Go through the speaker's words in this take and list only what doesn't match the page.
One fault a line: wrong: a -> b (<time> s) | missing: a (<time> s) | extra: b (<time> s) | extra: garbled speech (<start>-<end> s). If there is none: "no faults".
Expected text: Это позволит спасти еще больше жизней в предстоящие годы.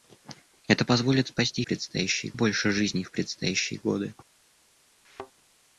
wrong: еще -> предстоящие (1.6 s)